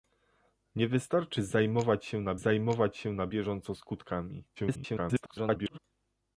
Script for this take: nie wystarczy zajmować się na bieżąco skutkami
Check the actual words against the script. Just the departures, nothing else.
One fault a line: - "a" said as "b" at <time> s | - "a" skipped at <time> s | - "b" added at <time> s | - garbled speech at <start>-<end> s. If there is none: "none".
- "zajmować się na" added at 2.3 s
- garbled speech at 4.6-5.8 s